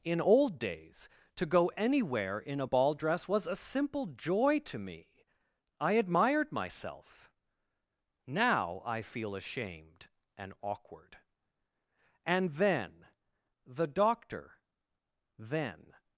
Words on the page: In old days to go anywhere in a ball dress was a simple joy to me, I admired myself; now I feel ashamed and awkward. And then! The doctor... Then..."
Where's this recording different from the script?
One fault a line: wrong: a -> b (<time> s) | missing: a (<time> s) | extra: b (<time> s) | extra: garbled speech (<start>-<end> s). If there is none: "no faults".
no faults